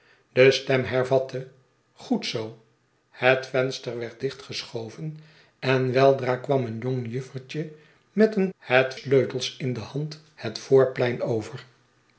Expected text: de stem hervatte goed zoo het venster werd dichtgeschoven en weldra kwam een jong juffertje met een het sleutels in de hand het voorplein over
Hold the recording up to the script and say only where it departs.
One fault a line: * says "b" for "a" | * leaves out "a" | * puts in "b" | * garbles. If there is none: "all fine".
all fine